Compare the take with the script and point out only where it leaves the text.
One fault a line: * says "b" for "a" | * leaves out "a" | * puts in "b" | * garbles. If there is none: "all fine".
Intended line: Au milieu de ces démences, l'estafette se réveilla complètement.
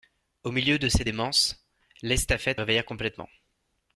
* leaves out "se"